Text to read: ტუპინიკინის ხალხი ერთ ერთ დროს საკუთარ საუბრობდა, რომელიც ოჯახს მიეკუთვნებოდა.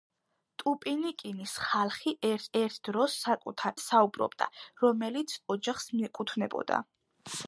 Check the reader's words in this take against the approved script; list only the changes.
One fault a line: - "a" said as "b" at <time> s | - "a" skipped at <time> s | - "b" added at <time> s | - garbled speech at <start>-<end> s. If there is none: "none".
none